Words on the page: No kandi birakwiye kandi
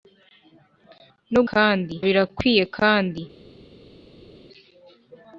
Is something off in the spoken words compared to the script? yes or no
no